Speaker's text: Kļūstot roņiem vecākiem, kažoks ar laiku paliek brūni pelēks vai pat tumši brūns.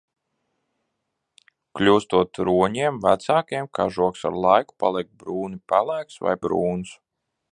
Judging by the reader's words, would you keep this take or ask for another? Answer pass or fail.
fail